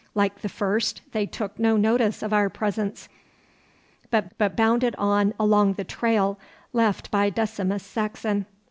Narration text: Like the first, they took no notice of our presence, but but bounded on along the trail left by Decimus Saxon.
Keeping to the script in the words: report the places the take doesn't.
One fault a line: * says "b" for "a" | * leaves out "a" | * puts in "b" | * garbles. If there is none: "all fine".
all fine